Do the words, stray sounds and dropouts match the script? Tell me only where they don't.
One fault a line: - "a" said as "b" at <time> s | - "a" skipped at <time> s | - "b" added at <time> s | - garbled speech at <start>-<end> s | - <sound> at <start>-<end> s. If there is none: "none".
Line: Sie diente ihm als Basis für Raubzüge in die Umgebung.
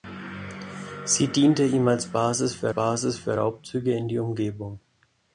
- "Basis für" added at 2.7 s